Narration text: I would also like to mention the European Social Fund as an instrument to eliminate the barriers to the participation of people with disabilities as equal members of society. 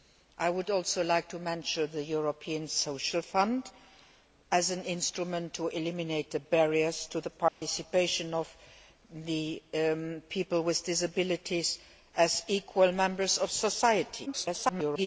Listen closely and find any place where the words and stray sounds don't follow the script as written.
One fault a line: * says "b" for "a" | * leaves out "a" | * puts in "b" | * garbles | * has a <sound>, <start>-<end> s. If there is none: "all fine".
* has a dropout, 7.5-7.6 s
* garbles